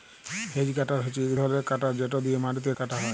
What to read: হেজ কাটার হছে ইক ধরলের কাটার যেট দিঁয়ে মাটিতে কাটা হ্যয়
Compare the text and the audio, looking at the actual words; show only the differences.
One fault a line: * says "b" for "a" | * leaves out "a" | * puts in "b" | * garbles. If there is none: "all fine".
all fine